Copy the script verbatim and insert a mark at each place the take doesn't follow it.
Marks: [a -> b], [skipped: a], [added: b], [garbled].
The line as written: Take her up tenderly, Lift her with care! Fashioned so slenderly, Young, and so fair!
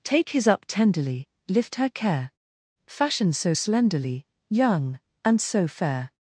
Take [her -> his] up tenderly, Lift her [skipped: with] care! Fashioned so slenderly, Young, and so fair!